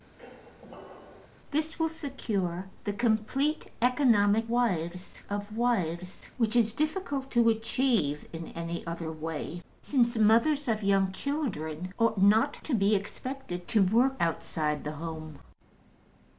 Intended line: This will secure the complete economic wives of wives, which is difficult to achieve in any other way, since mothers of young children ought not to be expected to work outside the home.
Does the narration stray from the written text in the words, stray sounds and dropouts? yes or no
yes